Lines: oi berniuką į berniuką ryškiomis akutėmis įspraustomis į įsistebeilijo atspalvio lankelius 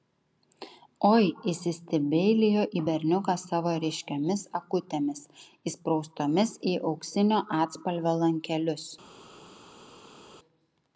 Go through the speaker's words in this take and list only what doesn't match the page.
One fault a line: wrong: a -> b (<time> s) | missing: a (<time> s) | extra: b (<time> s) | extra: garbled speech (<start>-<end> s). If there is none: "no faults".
wrong: berniuką -> įsistebeilijo (1.5 s)
extra: savo (3.4 s)
wrong: įsistebeilijo -> auksinio (6.9 s)